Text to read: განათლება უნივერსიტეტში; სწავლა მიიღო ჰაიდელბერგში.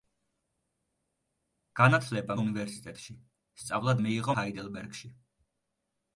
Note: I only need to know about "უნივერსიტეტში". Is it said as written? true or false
true